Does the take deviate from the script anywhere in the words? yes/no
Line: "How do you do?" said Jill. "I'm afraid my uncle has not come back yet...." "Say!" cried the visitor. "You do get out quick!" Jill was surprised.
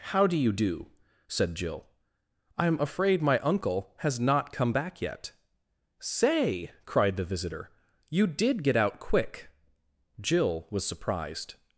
yes